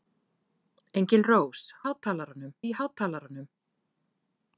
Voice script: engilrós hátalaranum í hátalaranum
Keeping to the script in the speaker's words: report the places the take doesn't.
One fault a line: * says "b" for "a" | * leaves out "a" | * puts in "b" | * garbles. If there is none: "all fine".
all fine